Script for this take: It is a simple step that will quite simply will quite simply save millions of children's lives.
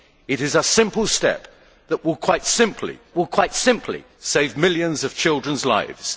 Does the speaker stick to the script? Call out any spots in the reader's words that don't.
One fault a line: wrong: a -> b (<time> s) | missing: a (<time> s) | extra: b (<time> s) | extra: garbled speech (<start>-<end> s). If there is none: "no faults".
no faults